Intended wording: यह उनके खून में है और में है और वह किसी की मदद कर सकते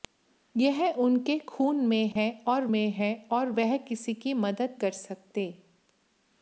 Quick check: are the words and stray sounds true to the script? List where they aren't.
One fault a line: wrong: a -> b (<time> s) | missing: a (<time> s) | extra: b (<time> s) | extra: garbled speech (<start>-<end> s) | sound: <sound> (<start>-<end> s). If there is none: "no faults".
sound: dropout (2.1-2.2 s)